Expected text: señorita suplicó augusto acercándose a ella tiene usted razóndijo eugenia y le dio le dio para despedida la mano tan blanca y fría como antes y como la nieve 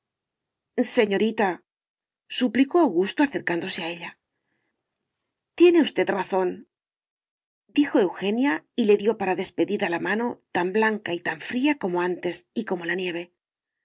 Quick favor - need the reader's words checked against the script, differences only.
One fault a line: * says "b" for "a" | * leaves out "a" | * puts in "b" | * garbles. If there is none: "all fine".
* leaves out "le dio"
* puts in "tan"